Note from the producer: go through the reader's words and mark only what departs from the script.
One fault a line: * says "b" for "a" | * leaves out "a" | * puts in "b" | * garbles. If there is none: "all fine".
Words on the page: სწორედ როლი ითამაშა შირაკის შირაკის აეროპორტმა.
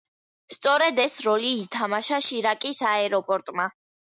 * puts in "ეს"
* leaves out "შირაკის"